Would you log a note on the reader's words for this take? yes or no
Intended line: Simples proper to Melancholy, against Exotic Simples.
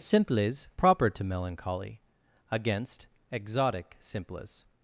no